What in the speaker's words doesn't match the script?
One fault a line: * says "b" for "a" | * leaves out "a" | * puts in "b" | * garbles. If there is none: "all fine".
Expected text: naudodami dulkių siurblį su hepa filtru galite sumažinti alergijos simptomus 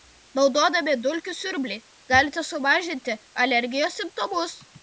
* leaves out "su hepa filtru"